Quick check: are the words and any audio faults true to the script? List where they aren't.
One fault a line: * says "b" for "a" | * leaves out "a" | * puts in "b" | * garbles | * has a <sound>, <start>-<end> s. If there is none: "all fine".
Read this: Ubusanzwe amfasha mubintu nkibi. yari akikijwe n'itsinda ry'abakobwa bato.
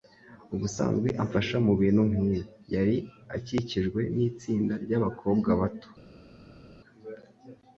all fine